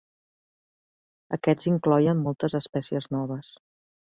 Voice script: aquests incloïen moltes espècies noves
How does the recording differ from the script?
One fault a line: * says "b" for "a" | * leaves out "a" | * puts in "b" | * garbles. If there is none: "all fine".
all fine